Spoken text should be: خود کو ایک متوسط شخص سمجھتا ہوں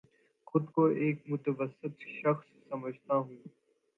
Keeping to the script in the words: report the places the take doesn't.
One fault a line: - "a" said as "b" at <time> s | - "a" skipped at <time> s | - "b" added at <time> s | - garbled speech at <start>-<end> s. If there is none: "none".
none